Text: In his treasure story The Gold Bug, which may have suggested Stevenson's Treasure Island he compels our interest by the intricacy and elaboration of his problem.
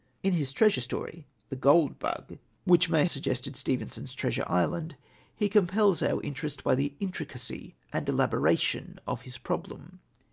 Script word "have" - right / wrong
wrong